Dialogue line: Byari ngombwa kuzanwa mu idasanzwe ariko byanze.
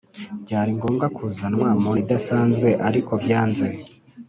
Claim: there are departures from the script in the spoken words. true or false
false